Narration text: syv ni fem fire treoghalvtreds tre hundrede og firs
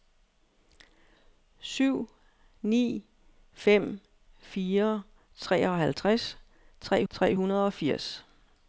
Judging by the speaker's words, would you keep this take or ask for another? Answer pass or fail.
fail